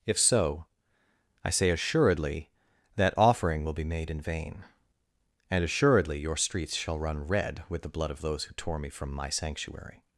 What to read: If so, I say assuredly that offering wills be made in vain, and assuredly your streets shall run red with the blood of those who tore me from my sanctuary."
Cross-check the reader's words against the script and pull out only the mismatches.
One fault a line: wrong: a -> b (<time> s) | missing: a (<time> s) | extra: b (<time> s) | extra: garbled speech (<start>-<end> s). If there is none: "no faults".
wrong: wills -> will (3.6 s)